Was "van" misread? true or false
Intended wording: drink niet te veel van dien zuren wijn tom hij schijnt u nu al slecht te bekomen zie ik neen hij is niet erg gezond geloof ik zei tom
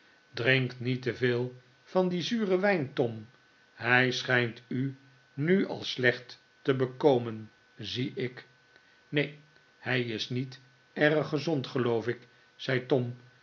false